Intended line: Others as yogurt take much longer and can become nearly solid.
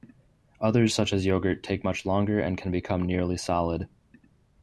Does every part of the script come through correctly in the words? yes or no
no